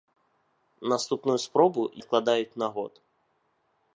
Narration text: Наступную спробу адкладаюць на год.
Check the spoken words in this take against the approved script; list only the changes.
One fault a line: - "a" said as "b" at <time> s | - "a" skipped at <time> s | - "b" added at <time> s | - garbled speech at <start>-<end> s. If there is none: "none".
none